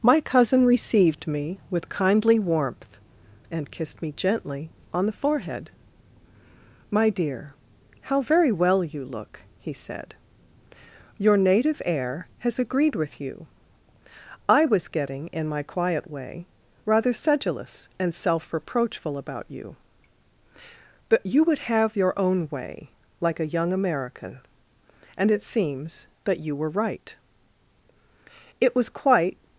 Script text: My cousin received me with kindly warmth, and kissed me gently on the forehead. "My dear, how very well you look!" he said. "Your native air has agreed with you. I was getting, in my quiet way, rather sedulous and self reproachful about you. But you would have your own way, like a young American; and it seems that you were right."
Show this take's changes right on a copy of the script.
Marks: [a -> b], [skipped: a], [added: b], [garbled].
My cousin received me with kindly warmth, and kissed me gently on the forehead. "My dear, how very well you look!" he said. "Your native air has agreed with you. I was getting, in my quiet way, rather sedulous and self reproachful about you. But you would have your own way, like a young American; and it seems that you were right." [added: It was quite]